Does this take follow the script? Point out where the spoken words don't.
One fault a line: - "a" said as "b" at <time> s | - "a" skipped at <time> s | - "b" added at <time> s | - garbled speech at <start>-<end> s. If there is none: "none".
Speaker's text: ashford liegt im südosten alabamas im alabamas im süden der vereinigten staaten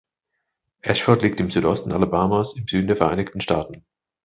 - "alabamas im" skipped at 2.7 s